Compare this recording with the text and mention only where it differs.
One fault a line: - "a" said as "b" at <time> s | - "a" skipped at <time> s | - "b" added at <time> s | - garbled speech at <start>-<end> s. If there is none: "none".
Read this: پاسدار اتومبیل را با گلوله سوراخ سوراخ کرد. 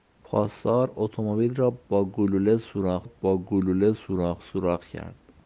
- "با گلوله سوراخ" added at 3.0 s